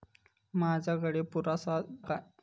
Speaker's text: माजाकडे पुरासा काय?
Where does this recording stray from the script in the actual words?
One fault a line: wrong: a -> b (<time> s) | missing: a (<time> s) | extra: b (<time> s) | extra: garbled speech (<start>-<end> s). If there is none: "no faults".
no faults